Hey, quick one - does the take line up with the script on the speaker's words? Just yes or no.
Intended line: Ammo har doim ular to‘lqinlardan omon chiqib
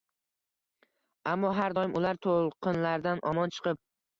yes